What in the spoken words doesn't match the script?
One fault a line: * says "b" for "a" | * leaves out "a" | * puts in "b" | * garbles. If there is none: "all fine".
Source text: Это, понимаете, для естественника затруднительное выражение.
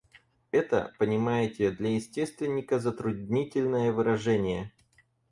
all fine